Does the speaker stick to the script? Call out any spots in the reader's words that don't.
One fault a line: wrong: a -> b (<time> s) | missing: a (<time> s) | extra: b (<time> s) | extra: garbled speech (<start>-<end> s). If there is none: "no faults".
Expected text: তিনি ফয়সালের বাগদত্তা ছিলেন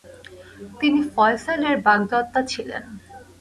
no faults